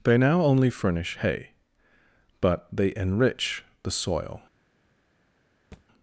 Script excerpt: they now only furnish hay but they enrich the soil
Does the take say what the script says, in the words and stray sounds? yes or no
no